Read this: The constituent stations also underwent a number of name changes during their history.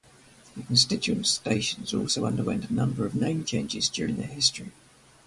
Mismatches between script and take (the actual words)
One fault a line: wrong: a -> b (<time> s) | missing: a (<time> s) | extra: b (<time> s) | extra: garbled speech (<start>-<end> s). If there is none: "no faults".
no faults